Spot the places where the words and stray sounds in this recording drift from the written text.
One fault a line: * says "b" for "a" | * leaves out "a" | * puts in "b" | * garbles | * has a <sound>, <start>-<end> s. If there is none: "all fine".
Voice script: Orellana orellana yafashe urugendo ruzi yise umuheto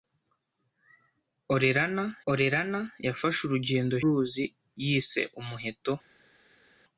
all fine